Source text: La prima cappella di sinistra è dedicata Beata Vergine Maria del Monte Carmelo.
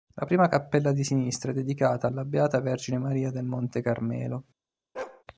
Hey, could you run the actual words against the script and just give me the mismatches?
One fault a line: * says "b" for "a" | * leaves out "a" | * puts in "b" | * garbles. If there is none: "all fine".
* puts in "alla"